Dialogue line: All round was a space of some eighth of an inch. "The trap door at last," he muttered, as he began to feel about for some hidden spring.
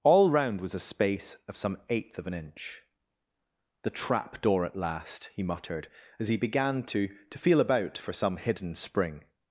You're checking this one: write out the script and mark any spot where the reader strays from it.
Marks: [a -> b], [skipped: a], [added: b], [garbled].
All round was a space of some eighth of an inch. "The trap door at last," he muttered, as he began to [added: to] feel about for some hidden spring.